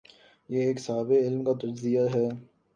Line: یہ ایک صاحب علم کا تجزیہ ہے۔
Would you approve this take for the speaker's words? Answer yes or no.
yes